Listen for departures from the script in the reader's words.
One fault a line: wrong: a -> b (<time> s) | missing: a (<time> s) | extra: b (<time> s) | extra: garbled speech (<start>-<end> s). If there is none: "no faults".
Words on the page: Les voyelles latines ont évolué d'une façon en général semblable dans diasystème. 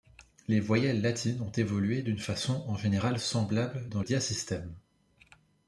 no faults